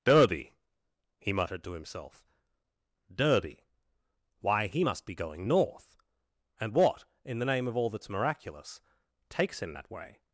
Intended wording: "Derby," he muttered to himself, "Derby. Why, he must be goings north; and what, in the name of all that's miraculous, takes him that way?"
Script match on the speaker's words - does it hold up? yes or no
no